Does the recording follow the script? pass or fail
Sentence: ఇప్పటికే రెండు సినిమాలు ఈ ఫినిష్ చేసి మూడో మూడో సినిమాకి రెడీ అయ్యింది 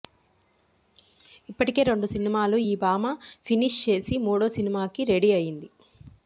fail